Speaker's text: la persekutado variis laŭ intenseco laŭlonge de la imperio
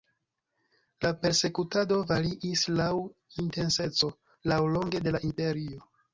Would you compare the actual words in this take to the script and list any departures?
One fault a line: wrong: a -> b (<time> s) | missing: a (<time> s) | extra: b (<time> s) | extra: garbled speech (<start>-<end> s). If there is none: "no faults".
no faults